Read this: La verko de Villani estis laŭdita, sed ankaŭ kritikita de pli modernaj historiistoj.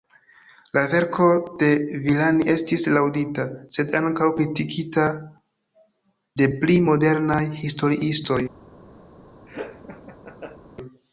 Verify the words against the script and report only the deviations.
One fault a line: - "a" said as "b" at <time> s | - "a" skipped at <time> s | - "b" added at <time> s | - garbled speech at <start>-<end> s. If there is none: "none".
none